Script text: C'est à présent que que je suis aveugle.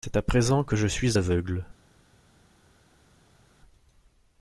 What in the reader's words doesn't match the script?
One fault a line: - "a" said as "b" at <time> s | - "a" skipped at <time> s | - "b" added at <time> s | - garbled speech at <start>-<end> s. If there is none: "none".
- "que" skipped at 0.8 s